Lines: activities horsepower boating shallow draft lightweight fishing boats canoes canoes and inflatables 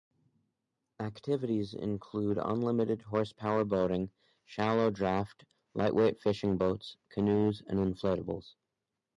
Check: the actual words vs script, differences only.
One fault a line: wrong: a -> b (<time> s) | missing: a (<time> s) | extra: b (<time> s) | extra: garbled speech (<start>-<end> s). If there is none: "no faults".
extra: include unlimited (1.8 s)
missing: canoes (7.6 s)